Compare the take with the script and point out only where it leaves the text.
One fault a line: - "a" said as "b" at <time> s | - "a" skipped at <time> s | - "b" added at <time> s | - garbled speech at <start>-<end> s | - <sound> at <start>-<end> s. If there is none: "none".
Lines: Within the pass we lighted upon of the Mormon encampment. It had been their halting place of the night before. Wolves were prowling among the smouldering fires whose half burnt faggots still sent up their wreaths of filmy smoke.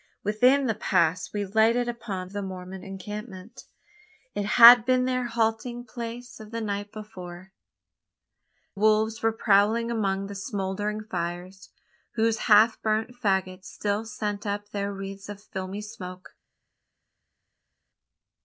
none